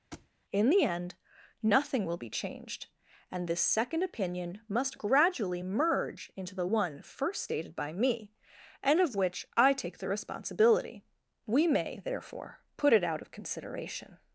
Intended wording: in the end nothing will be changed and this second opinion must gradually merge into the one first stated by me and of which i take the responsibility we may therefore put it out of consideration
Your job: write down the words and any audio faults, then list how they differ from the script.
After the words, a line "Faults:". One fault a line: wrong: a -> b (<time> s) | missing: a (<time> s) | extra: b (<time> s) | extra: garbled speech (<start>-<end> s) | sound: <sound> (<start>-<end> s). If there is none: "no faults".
in the end nothing will be changed and this second opinion must gradually merge into the one first stated by me and of which i take the responsibility we may therefore put it out of consideration
Faults:
sound: thud (0.1-0.3 s)